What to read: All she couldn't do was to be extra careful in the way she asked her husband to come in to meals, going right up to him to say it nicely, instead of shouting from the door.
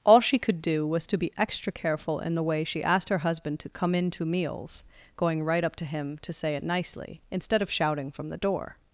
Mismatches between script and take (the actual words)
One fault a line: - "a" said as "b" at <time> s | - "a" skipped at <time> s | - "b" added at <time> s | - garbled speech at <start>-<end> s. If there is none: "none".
- "couldn't" said as "could" at 0.4 s